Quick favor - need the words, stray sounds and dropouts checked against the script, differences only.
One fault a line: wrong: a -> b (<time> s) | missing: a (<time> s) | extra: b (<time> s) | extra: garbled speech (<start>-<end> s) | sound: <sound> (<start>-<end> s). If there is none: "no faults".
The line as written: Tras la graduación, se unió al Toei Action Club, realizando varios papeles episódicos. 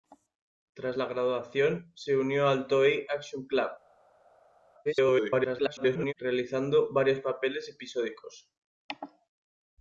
extra: garbled speech (4.8-6.1 s)